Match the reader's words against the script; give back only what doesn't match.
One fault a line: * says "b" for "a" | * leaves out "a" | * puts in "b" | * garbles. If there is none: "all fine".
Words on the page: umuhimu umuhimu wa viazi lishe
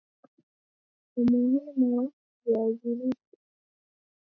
* leaves out "umuhimu"